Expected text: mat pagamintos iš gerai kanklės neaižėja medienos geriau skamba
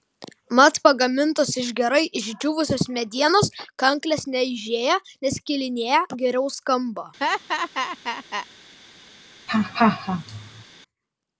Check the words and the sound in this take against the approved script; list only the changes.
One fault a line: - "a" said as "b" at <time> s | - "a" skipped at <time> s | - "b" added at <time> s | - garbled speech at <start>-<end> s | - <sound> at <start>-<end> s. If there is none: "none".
- "išdžiūvusios medienos" added at 2.2 s
- "medienos" said as "neskilinėja" at 5.3 s
- laugh at 7.2-8.5 s
- laugh at 9.5-10.6 s